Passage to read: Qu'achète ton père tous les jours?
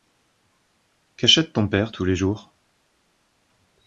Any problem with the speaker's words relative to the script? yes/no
no